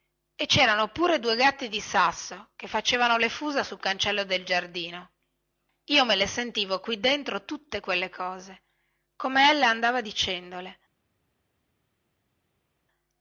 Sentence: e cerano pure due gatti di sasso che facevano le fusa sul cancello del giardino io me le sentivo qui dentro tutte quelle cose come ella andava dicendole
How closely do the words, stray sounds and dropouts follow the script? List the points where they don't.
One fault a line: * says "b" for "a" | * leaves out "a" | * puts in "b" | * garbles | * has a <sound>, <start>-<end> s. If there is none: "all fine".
all fine